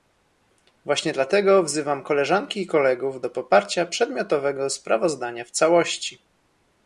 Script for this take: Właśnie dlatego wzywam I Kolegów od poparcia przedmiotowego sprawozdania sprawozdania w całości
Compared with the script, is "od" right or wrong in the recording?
wrong